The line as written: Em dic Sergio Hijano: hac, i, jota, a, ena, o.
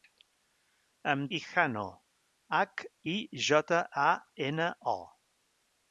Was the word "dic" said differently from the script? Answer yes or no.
yes